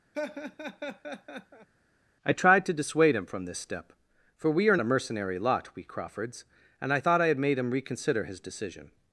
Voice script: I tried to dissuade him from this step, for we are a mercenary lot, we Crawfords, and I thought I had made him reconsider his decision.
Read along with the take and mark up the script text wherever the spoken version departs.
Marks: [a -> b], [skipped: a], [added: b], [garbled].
I tried to dissuade him from this step, for we are a mercenary lot, we Crawfords, and I thought I had made him reconsider his decision.